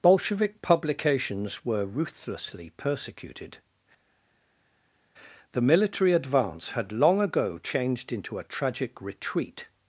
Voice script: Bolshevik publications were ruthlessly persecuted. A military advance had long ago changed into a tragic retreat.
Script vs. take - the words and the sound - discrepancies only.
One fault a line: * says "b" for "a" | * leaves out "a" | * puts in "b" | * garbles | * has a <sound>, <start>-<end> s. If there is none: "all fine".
* says "The" for "A"